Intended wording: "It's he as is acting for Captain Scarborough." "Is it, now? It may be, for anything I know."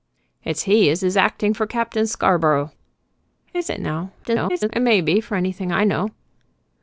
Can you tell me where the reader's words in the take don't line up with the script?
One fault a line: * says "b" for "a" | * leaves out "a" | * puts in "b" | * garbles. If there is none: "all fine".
* garbles